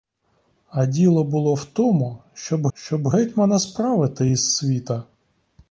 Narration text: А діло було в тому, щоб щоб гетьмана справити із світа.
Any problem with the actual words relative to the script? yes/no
no